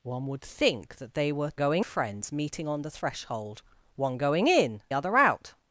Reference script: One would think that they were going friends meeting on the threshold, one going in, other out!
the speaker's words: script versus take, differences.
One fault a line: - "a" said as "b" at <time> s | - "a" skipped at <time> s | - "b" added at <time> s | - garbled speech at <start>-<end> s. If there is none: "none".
none